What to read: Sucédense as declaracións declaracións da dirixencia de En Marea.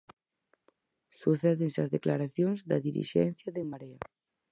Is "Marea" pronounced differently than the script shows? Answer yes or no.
no